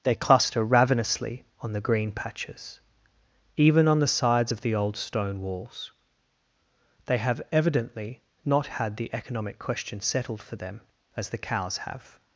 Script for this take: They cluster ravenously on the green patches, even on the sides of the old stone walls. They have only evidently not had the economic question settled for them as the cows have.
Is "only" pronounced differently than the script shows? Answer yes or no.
yes